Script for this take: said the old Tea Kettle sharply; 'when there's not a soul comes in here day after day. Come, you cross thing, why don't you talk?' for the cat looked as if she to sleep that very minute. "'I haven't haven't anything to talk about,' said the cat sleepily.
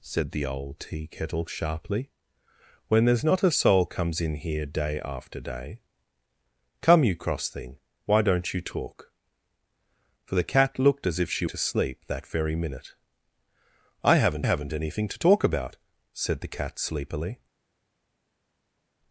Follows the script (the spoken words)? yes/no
yes